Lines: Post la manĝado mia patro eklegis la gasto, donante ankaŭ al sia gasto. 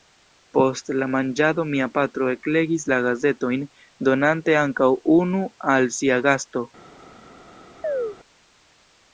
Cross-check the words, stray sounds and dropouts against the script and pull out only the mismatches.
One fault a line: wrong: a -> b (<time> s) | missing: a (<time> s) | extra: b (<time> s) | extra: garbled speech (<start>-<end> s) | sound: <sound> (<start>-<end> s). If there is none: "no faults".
wrong: gasto -> gazetojn (3.1 s)
extra: unu (5.2 s)
sound: chirp (7.8-8.2 s)